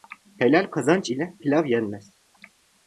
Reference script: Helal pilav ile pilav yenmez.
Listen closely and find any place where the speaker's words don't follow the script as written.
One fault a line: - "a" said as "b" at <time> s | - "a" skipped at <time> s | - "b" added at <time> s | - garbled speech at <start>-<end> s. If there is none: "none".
- "pilav" said as "kazanç" at 0.7 s